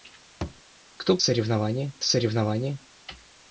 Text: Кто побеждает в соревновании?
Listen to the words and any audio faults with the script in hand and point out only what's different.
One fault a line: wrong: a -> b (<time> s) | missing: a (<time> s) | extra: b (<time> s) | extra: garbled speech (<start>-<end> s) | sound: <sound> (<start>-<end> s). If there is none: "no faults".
sound: thud (0.4-0.6 s)
wrong: побеждает -> соревновании (1.2 s)